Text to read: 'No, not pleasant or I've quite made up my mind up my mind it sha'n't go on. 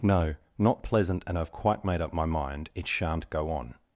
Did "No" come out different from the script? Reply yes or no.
no